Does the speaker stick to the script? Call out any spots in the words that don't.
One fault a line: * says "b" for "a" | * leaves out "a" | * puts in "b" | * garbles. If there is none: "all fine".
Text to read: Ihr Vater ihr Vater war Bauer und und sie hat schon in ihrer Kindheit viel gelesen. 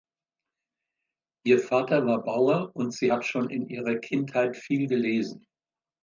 * leaves out "ihr Vater"
* leaves out "und"